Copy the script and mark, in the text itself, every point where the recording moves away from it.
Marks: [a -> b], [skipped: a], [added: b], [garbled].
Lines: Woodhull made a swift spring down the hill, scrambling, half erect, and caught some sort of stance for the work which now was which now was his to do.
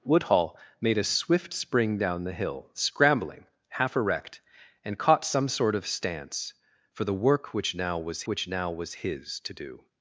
Woodhull made a swift spring down the hill, scrambling, half erect, and caught some sort of stance for the work which now was which now was his to do.